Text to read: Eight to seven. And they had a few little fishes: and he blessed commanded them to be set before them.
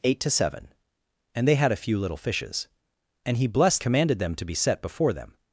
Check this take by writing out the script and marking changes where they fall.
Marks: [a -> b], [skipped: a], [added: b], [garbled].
Eight to seven. And they had a few little fishes: and he blessed commanded them to be set before them.